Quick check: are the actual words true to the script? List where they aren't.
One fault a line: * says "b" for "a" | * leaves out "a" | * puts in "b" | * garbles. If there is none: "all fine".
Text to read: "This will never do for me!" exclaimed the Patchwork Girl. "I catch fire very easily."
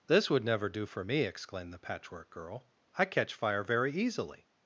* says "would" for "will"